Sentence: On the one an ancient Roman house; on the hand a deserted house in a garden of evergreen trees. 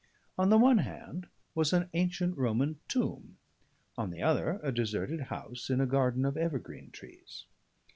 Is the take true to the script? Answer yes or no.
no